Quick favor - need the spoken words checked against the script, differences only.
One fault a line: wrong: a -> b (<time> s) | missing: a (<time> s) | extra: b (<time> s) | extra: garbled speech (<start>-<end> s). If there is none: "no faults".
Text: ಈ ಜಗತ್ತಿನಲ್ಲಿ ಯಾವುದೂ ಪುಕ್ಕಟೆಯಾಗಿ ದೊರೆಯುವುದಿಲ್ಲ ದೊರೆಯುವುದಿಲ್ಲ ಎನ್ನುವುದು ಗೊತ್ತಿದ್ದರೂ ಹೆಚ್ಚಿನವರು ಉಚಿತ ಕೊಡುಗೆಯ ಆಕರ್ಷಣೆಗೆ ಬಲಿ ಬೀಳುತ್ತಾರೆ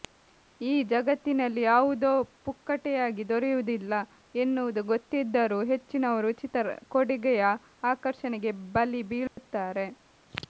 missing: ದೊರೆಯುವುದಿಲ್ಲ (3.9 s)